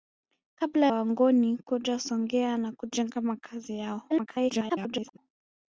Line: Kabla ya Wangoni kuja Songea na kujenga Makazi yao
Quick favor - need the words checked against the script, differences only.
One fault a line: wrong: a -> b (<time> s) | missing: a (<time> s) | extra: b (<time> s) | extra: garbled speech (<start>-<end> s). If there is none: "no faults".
missing: ya (0.9 s)
extra: garbled speech (4.1-5.2 s)